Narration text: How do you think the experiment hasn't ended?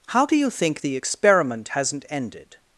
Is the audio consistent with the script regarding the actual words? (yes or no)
yes